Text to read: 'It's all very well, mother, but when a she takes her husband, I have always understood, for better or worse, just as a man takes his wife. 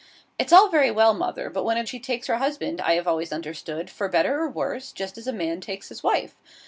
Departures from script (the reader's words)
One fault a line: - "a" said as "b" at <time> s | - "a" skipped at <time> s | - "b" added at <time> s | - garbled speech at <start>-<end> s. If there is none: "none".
none